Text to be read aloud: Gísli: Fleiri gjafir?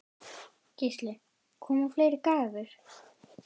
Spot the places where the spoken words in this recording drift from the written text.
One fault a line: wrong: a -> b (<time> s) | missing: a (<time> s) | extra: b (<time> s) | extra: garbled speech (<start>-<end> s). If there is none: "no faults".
extra: Koma (1.7 s)